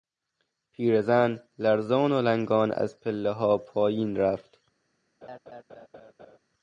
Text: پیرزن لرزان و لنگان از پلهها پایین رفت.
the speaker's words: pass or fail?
pass